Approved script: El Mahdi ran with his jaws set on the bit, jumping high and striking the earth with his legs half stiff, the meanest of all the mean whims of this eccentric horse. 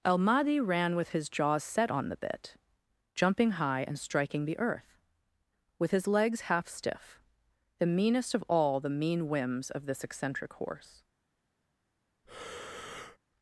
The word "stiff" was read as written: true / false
true